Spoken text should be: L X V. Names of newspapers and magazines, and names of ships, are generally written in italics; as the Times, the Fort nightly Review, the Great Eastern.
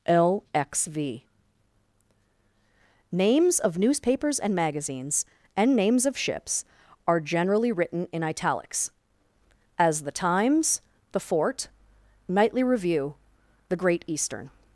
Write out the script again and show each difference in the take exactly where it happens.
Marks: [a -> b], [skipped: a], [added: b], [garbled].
L X V. Names of newspapers and magazines, and names of ships, are generally written in italics; as the Times, the Fort nightly Review, the Great Eastern.